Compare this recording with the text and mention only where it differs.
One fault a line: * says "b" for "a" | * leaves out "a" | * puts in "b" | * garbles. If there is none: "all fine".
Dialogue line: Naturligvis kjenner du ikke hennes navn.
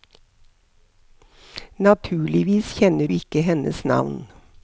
* leaves out "du"